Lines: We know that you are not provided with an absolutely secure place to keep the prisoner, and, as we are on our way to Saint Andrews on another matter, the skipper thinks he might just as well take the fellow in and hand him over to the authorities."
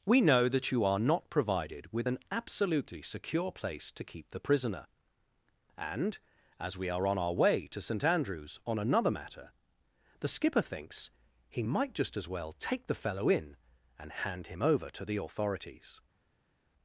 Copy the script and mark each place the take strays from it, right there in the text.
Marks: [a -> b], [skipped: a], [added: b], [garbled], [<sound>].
We know that you are not provided with an absolutely secure place to keep the prisoner, and, as we are on our way to Saint Andrews on another matter, the skipper thinks he might just as well take the fellow in and hand him over to the authorities."